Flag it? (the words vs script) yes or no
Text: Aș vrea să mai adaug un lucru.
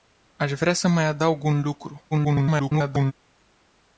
yes